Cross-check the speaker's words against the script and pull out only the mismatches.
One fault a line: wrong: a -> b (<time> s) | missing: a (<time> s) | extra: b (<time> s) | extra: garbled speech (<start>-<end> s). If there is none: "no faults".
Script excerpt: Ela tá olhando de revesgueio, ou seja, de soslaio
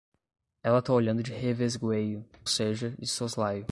missing: ou (2.2 s)